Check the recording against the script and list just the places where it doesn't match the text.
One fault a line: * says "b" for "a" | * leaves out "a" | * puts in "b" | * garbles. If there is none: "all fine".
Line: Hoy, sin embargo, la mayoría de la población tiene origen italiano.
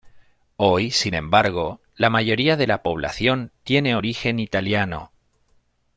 all fine